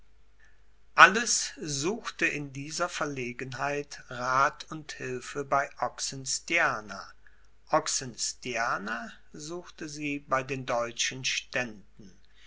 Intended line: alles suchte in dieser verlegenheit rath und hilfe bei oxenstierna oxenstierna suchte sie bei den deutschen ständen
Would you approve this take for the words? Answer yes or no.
yes